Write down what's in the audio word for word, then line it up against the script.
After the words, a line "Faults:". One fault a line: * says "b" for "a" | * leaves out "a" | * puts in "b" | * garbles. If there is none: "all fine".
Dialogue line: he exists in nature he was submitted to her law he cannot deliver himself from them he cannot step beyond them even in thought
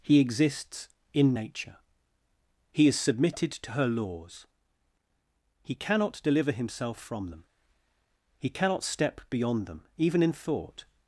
he exists in nature he is submitted to her laws he cannot deliver himself from them he cannot step beyond them even in thought
Faults:
* says "is" for "was"
* says "laws" for "law"